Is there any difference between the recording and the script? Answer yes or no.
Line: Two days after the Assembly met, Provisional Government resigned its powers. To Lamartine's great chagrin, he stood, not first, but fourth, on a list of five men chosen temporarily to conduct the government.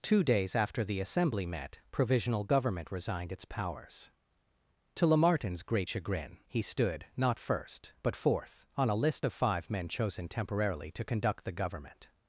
no